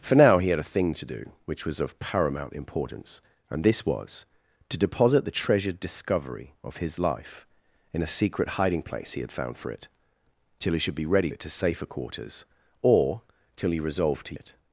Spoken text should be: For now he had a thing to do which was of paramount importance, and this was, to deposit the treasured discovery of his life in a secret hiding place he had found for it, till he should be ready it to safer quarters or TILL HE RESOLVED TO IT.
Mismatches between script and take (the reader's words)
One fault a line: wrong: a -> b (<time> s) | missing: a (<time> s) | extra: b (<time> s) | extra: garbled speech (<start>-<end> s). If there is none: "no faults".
no faults